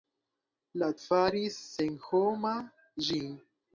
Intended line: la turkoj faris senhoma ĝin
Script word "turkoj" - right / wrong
wrong